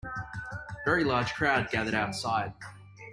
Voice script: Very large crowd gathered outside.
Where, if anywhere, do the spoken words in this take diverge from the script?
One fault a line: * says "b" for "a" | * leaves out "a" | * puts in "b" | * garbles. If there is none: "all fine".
all fine